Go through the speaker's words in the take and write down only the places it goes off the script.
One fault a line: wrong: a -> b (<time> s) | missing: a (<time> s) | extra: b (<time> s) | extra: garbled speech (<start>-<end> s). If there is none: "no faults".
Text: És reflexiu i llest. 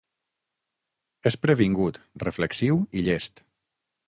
extra: previngut (1.4 s)